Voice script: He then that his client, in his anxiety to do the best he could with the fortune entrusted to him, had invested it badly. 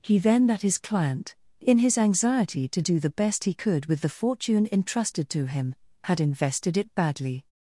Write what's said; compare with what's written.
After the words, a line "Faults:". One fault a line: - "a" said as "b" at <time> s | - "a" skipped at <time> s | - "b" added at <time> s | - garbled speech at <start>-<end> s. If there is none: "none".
He then that his client, in his anxiety to do the best he could with the fortune entrusted to him, had invested it badly.
Faults:
none